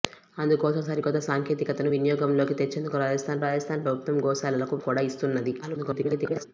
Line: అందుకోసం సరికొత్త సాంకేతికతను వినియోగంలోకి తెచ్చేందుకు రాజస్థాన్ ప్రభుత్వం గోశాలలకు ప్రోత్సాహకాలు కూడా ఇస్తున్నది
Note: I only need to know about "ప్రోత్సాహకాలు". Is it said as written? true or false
false